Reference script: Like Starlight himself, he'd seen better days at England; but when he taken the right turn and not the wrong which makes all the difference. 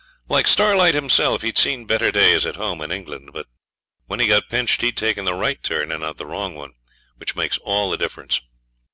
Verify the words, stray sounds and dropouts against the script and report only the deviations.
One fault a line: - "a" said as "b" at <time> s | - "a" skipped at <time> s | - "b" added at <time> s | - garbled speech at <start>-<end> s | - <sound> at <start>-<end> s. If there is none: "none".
- "home in" added at 2.5 s
- "got pinched he'd" added at 4.2 s
- "one" added at 6.5 s